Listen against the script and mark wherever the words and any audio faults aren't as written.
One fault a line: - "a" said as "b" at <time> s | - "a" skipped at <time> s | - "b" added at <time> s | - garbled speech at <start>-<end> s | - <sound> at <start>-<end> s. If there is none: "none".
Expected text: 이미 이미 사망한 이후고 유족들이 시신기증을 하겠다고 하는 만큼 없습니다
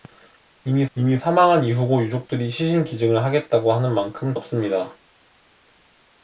none